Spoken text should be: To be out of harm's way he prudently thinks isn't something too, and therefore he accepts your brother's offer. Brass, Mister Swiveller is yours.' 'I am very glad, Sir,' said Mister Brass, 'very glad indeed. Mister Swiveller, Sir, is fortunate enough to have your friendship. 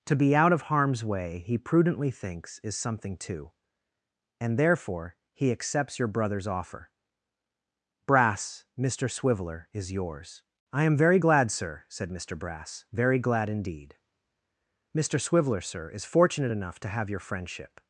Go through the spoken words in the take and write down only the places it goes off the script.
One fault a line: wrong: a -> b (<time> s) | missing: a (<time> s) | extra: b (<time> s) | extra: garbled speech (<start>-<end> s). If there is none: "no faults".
wrong: isn't -> is (2.6 s)